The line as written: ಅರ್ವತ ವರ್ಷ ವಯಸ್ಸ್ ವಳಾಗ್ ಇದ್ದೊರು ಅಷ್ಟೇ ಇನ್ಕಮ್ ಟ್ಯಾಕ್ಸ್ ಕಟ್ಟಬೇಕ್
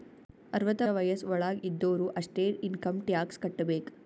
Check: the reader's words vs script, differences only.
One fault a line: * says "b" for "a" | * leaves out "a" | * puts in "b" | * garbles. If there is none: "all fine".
* leaves out "ವರ್ಷ"